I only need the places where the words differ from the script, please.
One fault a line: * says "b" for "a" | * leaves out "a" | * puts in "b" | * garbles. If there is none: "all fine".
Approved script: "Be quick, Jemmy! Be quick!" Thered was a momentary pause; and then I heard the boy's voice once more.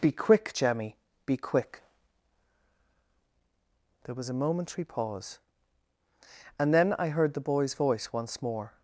* says "There" for "Thered"